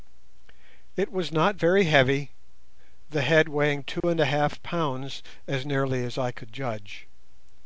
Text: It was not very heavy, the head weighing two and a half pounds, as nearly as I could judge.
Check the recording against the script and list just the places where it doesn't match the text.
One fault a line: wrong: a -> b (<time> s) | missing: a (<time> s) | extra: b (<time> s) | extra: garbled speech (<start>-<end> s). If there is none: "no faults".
no faults